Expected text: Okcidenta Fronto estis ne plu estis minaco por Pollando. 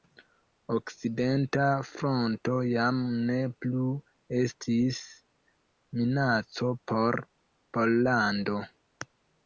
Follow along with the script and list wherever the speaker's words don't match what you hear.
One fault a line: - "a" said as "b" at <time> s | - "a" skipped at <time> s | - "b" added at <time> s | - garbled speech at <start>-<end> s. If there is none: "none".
- "estis" said as "jam" at 2.7 s